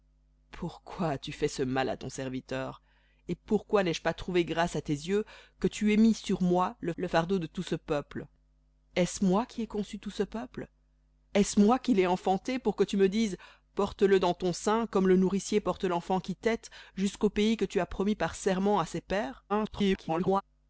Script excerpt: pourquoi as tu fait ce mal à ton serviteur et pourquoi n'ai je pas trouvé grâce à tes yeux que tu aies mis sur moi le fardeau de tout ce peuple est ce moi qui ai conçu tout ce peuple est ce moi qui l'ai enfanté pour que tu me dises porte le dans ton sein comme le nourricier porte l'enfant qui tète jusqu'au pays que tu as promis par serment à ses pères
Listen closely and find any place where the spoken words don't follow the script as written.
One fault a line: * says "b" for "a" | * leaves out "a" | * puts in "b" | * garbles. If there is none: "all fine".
* puts in "le"
* garbles